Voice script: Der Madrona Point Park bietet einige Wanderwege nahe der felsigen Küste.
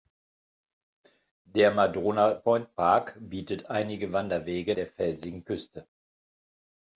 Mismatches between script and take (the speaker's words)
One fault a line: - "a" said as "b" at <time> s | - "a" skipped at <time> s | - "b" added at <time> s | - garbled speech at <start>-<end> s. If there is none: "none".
- "nahe" skipped at 4.8 s